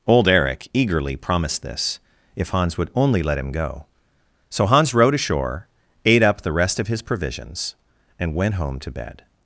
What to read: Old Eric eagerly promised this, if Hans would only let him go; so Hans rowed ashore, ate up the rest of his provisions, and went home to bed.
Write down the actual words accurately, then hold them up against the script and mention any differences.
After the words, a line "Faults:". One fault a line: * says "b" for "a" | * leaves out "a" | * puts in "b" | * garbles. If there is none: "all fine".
Old Eric eagerly promised this, if Hans would only let him go; so Hans rowed ashore, ate up the rest of his provisions, and went home to bed.
Faults:
all fine